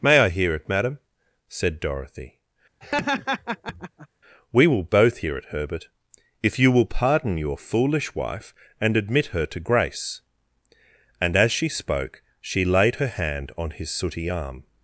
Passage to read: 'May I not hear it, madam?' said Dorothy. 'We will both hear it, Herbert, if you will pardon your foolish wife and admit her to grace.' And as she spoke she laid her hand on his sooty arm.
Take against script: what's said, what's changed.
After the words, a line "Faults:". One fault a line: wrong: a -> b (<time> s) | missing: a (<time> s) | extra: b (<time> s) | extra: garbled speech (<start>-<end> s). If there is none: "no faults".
'May I hear it, madam?' said Dorothy. 'We will both hear it, Herbert, if you will pardon your foolish wife and admit her to grace.' And as she spoke she laid her hand on his sooty arm.
Faults:
missing: not (0.3 s)